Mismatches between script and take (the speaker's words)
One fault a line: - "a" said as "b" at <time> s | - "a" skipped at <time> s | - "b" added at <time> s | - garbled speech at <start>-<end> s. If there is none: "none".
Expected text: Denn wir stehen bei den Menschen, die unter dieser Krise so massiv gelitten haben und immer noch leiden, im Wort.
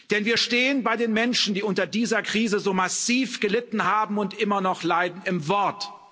none